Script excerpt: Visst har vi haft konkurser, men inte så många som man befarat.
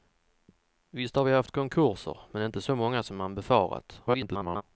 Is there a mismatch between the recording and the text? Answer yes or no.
yes